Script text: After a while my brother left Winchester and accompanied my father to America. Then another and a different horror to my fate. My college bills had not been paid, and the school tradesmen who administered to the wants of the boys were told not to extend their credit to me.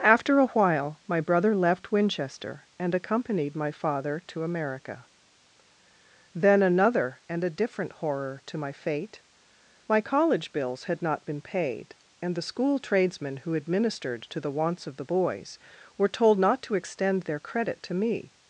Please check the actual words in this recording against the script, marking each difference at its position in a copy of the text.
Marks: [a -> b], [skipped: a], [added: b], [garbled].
After a while my brother left Winchester and accompanied my father to America. Then another and a different horror to my fate. My college bills had not been paid, and the school tradesmen who administered to the wants of the boys were told not to extend their credit to me.